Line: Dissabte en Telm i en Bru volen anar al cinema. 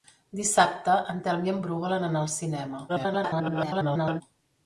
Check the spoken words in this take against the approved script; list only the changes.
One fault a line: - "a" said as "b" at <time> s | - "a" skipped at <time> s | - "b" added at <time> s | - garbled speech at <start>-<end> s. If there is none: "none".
- garbled speech at 2.9-4.2 s